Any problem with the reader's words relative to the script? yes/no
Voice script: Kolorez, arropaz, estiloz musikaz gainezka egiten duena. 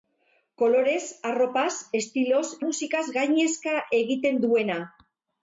no